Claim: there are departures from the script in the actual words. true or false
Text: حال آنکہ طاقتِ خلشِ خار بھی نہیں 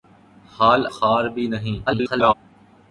true